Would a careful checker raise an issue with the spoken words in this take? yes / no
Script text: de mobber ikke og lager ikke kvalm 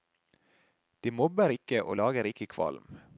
no